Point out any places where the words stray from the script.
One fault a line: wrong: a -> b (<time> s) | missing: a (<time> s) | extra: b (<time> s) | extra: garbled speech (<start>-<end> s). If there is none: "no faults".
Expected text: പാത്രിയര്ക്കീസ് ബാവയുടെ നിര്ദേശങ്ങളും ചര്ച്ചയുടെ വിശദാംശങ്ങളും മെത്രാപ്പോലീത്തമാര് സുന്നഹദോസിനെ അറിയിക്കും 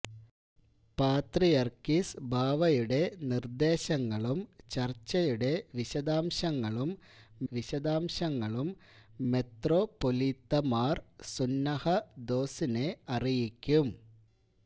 extra: വിശദാംശങ്ങളും (7.5 s)